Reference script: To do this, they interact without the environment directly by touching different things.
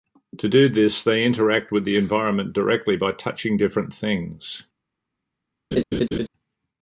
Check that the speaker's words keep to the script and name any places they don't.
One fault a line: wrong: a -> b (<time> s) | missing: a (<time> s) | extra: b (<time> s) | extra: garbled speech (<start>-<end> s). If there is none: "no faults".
wrong: without -> with (1.7 s)